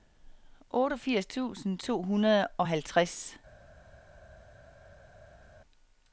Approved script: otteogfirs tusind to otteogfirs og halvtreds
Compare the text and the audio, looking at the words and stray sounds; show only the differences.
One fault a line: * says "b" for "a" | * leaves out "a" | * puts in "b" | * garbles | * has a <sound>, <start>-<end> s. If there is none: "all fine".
* says "hundrede" for "otteogfirs"